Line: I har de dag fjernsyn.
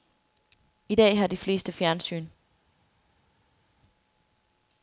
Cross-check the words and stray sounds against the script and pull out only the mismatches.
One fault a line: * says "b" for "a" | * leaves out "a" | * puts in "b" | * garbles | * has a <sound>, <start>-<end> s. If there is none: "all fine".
* puts in "dag"
* says "fleste" for "dag"